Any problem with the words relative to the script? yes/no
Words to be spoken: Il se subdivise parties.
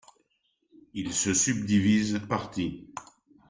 no